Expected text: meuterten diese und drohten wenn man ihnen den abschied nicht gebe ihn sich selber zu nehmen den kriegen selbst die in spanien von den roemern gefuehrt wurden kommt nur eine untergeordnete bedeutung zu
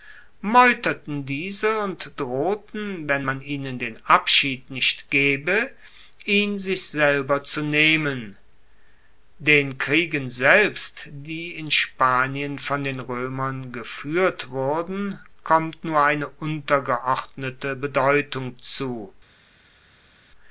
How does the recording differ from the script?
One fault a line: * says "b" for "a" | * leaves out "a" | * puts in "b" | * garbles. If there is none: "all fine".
all fine